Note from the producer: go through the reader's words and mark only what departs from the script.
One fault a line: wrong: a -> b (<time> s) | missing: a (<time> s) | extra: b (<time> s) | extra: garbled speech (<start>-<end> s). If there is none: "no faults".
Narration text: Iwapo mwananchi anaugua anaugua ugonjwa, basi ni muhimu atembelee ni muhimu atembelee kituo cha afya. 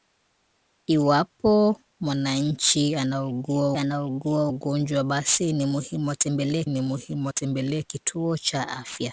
no faults